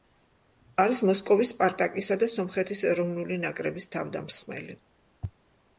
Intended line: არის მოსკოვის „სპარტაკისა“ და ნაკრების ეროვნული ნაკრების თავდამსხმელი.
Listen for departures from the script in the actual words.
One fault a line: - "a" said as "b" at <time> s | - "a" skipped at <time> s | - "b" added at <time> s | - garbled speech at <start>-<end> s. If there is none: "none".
- "ნაკრების" said as "სომხეთის" at 2.4 s